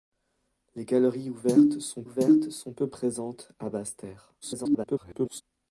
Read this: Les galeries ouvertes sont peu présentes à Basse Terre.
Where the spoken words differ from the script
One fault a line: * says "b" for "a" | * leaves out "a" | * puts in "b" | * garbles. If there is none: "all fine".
* puts in "ouvertes sont"
* garbles